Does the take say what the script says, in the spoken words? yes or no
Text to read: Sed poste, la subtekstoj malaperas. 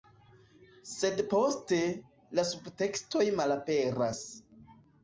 yes